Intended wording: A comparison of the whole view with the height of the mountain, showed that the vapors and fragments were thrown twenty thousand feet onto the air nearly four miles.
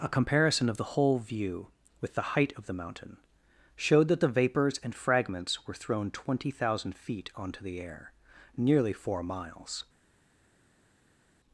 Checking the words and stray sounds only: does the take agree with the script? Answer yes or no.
yes